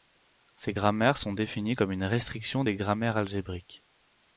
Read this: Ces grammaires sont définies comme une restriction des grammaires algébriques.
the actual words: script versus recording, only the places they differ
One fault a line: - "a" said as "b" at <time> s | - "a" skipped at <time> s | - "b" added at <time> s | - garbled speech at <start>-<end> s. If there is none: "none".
none